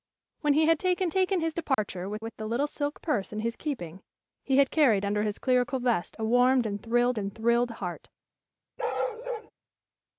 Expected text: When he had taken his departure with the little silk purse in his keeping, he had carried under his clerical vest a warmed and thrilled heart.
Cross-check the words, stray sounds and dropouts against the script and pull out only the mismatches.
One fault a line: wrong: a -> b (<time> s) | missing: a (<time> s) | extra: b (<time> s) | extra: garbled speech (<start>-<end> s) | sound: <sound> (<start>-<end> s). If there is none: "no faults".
extra: taken (1.1 s)
sound: dropout (1.7-1.8 s)
extra: with (2.2 s)
extra: and thrilled (7.2 s)
sound: bark (8.8-9.5 s)